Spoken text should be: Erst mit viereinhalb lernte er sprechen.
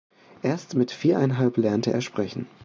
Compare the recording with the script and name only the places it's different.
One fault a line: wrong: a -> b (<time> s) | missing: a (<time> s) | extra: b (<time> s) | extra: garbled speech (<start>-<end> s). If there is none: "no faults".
no faults